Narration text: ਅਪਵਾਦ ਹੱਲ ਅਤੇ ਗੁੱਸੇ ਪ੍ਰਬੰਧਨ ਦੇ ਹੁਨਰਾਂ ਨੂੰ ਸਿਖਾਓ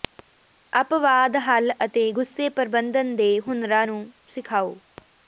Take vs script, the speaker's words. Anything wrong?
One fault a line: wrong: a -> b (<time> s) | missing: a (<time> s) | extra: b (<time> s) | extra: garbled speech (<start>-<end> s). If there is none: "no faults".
no faults